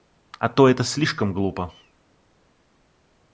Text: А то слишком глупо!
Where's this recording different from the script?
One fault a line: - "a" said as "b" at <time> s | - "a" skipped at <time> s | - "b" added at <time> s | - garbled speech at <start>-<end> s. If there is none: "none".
- "это" added at 0.7 s